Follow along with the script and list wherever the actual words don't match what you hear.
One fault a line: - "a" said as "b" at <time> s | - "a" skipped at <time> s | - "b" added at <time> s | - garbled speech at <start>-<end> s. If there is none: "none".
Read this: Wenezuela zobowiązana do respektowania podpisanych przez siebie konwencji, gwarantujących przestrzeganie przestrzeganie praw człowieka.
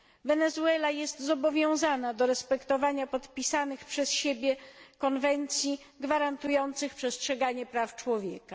- "jest" added at 0.9 s
- "przestrzeganie" skipped at 7.7 s